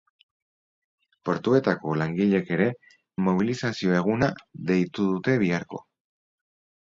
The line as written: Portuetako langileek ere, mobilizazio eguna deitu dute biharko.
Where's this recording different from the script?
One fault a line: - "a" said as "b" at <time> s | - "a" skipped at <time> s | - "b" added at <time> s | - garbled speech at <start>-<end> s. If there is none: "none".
none